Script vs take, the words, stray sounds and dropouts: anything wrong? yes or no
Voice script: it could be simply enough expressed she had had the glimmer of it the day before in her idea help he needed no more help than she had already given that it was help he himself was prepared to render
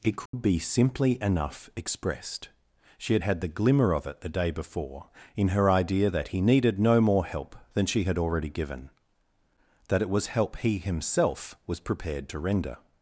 yes